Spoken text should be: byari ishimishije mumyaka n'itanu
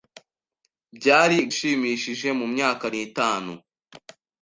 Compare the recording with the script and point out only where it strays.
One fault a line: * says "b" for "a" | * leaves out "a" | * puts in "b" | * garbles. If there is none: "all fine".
all fine